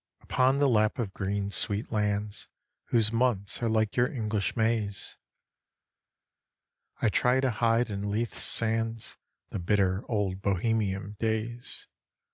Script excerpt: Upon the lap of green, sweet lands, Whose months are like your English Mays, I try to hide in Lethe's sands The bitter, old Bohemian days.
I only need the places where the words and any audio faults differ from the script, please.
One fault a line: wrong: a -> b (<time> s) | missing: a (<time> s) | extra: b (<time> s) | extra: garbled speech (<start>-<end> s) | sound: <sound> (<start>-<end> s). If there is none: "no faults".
no faults